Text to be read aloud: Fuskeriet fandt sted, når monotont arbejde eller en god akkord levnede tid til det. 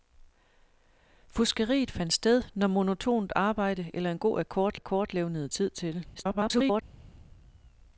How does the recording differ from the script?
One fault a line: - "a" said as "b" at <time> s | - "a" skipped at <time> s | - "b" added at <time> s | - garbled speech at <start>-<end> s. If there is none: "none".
- "akkord" added at 4.7 s
- garbled speech at 6.1-6.8 s